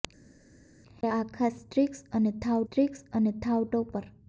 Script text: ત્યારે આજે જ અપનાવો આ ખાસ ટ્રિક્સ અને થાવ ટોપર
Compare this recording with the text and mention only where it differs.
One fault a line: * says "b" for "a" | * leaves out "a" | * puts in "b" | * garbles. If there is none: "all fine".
* says "આ ખાસ ટ્રિક્સ અને થાવ" for "આજે જ અપનાવો આ ખાસ"